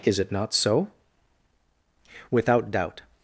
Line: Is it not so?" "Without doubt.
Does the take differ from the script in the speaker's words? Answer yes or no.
no